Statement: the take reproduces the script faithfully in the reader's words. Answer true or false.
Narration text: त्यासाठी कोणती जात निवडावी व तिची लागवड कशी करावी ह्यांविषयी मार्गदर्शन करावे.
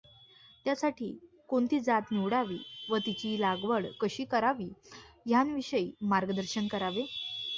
true